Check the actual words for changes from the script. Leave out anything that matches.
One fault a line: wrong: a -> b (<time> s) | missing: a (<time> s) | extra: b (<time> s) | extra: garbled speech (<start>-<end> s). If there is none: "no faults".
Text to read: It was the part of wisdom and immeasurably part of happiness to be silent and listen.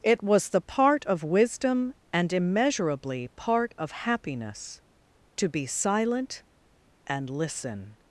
no faults